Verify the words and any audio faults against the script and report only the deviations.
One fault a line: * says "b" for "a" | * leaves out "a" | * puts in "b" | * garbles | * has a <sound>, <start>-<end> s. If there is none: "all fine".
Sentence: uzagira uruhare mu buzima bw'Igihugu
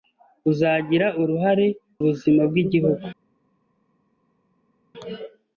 * leaves out "mu"